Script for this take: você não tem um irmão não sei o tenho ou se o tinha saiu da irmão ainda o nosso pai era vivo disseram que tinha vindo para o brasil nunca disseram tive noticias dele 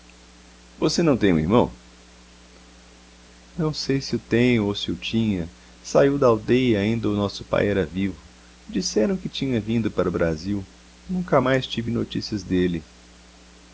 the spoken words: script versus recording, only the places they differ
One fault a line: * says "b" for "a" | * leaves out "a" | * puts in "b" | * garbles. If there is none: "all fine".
* puts in "se"
* says "aldeia" for "irmão"
* says "mais" for "disseram"